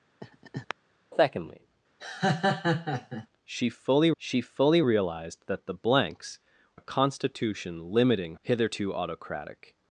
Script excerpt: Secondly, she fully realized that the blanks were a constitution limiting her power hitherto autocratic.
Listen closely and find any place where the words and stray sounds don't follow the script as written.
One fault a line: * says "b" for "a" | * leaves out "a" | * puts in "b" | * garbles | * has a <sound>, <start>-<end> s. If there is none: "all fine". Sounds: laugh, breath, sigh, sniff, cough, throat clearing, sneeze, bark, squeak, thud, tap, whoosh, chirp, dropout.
* has a laugh, 0.2-0.7 s
* has a laugh, 2.0-3.3 s
* puts in "she fully"
* leaves out "were"
* leaves out "her power"